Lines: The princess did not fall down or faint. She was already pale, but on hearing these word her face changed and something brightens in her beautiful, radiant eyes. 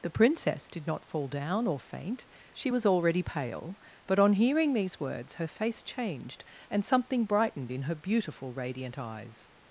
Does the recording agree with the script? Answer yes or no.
no